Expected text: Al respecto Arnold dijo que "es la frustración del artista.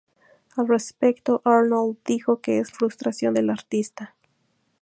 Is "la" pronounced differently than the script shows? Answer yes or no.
yes